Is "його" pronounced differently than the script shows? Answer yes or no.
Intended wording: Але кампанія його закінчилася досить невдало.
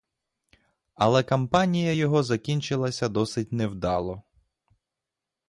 no